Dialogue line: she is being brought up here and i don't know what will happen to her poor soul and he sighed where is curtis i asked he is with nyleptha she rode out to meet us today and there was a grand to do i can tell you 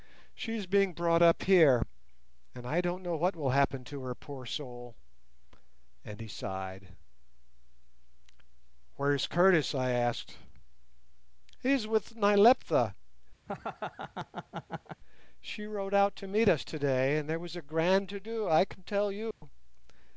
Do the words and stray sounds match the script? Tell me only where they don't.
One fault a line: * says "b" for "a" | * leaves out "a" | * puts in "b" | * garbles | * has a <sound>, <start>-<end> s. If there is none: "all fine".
* has a laugh, 13.5-15.0 s
* has a dropout, 19.3-19.4 s